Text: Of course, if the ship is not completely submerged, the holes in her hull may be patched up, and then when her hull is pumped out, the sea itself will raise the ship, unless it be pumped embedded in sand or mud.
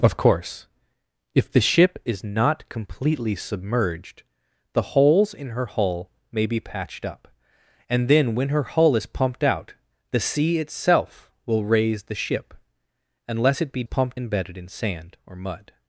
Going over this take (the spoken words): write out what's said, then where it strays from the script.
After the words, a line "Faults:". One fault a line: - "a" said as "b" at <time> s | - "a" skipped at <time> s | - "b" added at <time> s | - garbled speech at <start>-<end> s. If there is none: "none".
Of course, if the ship is not completely submerged, the holes in her hull may be patched up, and then when her hull is pumped out, the sea itself will raise the ship, unless it be pumped embedded in sand or mud.
Faults:
none